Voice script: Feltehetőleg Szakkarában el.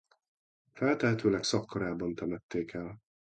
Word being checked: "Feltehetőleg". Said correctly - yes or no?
yes